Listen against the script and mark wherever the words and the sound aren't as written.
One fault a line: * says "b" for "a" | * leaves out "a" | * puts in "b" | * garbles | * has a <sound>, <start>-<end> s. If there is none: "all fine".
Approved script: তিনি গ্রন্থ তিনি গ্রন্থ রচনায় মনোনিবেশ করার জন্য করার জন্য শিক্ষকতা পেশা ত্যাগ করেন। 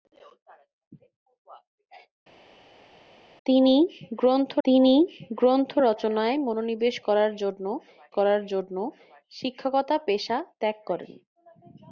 all fine